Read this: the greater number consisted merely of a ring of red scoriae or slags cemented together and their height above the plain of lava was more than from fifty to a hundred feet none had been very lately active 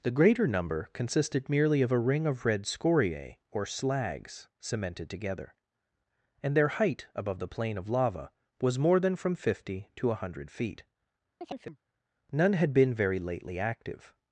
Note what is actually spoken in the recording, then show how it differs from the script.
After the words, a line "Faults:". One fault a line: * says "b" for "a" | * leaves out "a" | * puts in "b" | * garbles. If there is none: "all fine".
the greater number consisted merely of a ring of red scoriae or slags cemented together and their height above the plain of lava was more than from fifty to a hundred feet none had been very lately active
Faults:
all fine